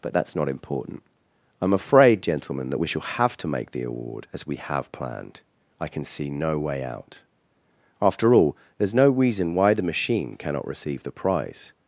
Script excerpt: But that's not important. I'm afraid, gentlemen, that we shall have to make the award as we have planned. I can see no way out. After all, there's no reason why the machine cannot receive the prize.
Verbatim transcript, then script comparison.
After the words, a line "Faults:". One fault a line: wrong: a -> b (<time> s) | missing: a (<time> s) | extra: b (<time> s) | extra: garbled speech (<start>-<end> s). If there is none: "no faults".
But that's not important. I'm afraid, gentlemen, that we shall have to make the award as we have planned. I can see no way out. After all, there's no reason why the machine cannot receive the prize.
Faults:
no faults